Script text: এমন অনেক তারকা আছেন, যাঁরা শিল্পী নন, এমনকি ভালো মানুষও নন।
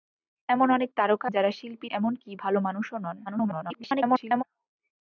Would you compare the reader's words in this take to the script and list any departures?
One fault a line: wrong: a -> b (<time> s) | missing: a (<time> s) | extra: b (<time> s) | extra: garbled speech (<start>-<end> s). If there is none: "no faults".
missing: আছেন (1.3 s)
missing: নন (1.9 s)
extra: garbled speech (3.3-4.4 s)